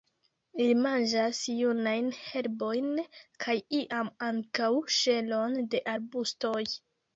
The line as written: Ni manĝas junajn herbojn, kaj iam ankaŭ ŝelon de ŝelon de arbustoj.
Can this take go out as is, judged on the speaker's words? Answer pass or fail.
fail